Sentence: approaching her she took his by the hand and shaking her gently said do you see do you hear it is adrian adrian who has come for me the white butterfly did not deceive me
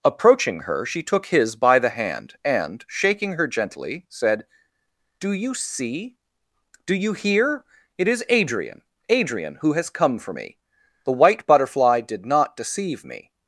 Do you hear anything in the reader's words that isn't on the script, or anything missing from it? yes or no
no